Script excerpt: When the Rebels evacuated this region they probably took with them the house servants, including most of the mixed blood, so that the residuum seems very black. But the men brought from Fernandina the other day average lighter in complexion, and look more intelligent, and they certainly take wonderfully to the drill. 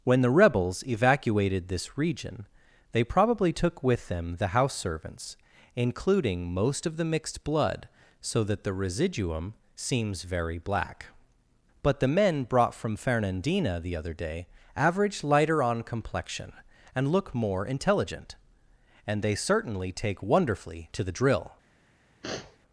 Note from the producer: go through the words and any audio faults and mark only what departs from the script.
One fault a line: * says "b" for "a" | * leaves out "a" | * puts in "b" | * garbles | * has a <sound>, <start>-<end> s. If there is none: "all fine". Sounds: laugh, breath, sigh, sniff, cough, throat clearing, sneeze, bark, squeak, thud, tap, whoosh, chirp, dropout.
* says "on" for "in"
* has a sniff, 22.2-22.6 s